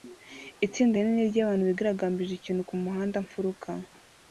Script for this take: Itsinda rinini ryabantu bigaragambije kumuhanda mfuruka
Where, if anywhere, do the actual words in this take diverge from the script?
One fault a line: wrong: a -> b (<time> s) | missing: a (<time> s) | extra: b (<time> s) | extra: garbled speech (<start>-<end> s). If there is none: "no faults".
extra: ikintu (2.4 s)